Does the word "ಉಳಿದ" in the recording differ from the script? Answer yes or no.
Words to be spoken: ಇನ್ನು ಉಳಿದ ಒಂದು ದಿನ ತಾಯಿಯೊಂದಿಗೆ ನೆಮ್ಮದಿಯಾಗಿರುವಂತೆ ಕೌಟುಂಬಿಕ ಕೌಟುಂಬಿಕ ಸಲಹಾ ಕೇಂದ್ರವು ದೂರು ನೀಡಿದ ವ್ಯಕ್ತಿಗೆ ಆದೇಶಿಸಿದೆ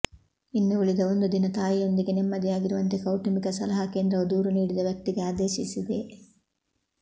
no